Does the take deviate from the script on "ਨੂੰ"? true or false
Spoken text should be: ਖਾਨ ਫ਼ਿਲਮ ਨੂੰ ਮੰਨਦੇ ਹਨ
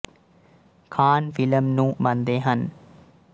false